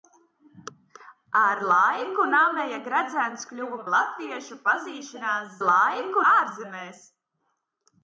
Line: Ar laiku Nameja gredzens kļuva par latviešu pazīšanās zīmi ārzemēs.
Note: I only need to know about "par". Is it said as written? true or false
false